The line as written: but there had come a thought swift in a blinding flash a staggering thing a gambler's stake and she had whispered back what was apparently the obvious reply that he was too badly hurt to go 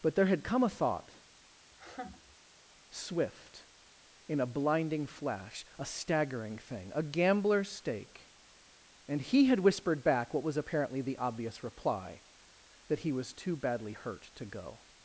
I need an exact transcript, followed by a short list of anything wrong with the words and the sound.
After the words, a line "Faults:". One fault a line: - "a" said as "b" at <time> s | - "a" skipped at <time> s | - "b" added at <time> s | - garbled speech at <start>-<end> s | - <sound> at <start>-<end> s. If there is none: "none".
but there had come a thought swift in a blinding flash a staggering thing a gambler's stake and he had whispered back what was apparently the obvious reply that he was too badly hurt to go
Faults:
- laugh at 1.7-2.4 s
- "she" said as "he" at 9.2 s